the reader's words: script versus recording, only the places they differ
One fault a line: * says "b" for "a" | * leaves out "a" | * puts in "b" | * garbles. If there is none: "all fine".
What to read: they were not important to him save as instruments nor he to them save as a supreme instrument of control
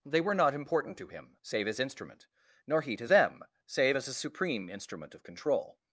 * says "instrument" for "instruments"